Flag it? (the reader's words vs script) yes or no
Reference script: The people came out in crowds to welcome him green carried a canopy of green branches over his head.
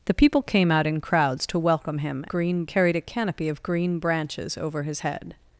no